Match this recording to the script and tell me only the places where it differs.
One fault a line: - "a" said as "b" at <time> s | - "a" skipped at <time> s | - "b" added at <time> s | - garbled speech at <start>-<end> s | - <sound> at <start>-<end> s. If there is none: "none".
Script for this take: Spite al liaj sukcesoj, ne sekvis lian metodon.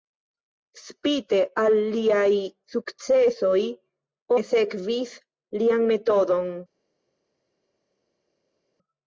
none